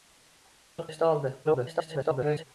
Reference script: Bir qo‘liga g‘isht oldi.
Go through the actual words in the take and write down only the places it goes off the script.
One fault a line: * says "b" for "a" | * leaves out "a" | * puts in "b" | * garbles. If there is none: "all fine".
* leaves out "qo‘liga"
* garbles